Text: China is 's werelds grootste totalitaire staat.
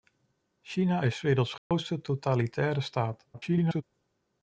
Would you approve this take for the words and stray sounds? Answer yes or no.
no